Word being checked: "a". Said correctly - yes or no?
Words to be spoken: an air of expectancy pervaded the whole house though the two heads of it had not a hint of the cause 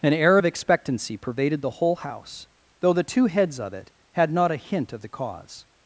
yes